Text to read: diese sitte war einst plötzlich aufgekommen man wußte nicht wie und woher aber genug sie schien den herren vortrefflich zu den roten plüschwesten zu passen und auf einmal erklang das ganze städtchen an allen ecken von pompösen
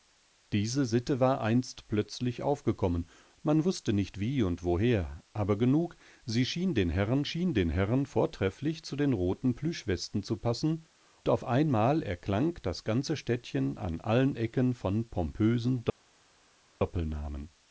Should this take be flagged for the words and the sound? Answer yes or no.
yes